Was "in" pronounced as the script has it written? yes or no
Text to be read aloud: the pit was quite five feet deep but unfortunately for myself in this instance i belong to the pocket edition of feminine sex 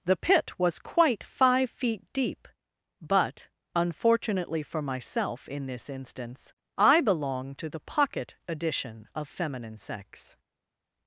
yes